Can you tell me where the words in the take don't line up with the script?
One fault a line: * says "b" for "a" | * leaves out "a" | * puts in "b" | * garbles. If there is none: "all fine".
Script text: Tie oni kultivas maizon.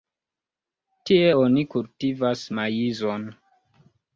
all fine